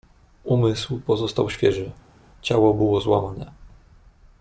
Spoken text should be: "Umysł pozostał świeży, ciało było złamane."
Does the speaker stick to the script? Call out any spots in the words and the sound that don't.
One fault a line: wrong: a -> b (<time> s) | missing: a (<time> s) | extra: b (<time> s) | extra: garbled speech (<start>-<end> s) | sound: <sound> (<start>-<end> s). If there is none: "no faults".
no faults